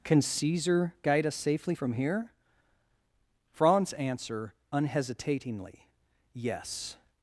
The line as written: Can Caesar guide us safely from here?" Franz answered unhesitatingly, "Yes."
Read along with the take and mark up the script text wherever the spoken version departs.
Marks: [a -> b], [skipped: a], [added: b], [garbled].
Can Caesar guide us safely from here?" Franz [answered -> answer] unhesitatingly, "Yes."